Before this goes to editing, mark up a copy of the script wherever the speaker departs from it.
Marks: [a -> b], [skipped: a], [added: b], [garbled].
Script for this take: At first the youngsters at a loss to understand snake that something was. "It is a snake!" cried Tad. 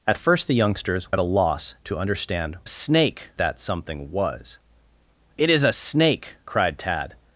At first the youngsters at a loss to understand snake that something was. "It is a snake!" cried Tad.